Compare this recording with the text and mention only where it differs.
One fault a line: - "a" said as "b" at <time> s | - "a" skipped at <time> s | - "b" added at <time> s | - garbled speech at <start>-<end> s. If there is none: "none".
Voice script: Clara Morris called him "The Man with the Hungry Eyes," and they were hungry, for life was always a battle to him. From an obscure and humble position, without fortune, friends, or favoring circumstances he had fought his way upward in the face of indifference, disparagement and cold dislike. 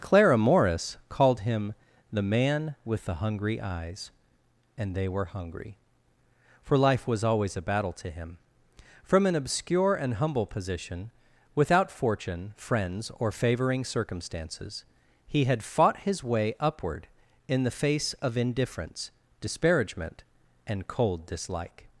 none